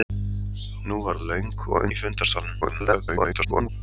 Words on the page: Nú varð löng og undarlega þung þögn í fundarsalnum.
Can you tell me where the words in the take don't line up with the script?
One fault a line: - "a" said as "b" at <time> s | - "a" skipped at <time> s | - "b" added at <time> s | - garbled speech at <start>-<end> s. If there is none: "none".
- "undarlega þung þögn" skipped at 1.9 s
- garbled speech at 2.6-3.7 s